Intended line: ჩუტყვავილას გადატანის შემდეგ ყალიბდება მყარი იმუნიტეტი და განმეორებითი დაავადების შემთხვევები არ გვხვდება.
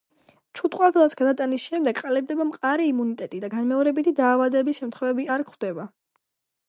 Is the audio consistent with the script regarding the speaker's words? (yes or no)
yes